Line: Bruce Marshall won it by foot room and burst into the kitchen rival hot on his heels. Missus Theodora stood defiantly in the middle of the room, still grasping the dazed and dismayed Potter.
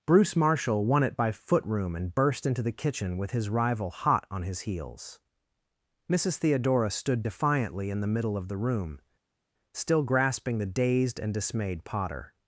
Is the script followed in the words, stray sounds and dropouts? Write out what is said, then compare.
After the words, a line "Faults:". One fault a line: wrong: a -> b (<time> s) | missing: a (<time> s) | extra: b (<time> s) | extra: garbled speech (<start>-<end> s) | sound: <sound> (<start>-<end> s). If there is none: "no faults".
Bruce Marshall won it by foot room and burst into the kitchen with his rival hot on his heels. Missus Theodora stood defiantly in the middle of the room, still grasping the dazed and dismayed Potter.
Faults:
extra: with his (3.2 s)